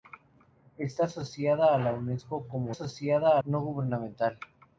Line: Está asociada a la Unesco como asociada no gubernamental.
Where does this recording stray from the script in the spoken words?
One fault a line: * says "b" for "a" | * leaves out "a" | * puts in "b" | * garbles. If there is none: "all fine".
all fine